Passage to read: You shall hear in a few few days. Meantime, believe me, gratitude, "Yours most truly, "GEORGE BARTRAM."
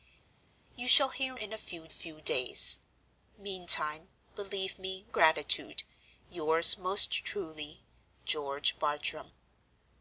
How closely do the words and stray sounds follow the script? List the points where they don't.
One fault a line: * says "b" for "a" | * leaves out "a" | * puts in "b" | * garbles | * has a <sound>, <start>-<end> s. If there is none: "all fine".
all fine